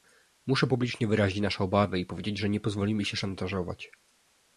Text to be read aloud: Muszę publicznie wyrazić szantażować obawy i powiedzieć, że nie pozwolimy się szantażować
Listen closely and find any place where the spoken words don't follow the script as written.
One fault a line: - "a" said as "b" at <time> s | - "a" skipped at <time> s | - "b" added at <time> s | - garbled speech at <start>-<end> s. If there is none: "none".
- "szantażować" said as "nasze" at 1.4 s